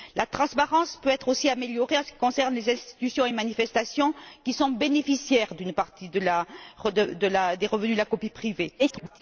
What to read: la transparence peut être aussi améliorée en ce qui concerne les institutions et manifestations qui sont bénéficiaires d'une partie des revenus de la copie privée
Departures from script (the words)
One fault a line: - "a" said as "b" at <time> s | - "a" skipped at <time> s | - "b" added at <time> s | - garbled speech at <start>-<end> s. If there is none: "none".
- garbled speech at 8.8-9.2 s